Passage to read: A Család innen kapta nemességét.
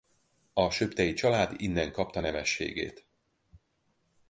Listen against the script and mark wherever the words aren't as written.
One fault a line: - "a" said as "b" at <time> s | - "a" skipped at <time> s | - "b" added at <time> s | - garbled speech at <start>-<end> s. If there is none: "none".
- "Söptey" added at 0.7 s